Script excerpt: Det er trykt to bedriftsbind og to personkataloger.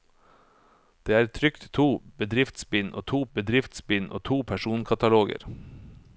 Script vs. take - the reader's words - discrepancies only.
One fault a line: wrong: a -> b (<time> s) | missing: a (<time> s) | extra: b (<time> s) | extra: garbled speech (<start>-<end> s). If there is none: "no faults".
extra: bedriftsbind og to (3.3 s)